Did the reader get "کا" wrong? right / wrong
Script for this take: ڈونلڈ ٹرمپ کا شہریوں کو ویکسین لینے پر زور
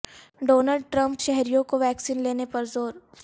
wrong